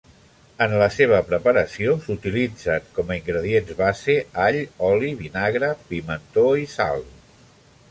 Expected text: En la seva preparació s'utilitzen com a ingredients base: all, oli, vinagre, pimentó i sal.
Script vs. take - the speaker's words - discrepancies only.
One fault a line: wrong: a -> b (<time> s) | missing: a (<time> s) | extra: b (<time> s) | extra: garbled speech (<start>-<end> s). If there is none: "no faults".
no faults